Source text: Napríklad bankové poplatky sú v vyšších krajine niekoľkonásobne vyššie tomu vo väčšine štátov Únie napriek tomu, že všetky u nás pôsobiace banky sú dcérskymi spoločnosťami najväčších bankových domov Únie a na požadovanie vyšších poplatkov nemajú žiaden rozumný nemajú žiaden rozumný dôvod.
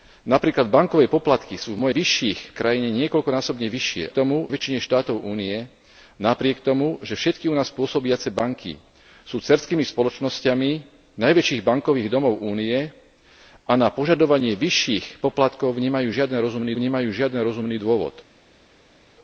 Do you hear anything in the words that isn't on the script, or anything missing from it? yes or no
no